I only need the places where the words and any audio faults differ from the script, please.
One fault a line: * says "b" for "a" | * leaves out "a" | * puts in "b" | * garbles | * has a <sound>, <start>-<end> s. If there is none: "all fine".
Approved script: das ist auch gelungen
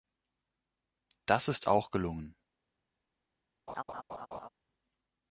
* has a laugh, 3.7-4.5 s